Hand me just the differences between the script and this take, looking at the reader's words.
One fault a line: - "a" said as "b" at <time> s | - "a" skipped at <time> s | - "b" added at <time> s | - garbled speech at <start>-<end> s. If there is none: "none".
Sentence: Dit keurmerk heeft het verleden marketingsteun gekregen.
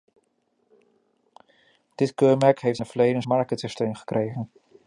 none